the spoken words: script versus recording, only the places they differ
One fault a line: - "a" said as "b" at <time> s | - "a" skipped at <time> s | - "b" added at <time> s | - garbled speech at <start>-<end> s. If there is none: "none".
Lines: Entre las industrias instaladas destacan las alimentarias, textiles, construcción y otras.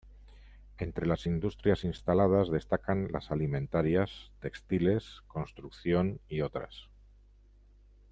none